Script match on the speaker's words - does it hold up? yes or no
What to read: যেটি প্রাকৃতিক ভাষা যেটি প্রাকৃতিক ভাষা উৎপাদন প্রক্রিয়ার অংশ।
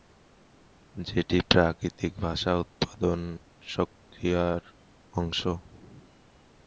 no